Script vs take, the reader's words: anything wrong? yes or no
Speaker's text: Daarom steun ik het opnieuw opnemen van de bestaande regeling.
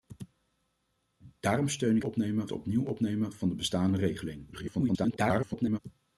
yes